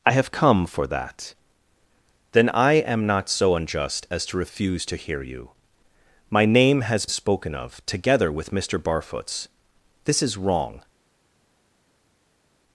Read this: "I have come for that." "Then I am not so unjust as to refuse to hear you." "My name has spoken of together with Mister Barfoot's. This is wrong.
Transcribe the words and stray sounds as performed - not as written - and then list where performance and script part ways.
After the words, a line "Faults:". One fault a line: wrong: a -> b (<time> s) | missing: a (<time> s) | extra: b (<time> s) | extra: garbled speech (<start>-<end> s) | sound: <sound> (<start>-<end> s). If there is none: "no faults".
"I have come for that." "Then I am not so unjust as to refuse to hear you." "My name has spoken of together with Mister Barfoot's. This is wrong.
Faults:
no faults